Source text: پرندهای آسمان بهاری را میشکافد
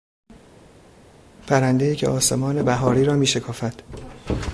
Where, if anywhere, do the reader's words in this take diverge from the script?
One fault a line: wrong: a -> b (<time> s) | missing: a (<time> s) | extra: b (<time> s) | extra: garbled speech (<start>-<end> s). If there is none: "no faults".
extra: که (1.9 s)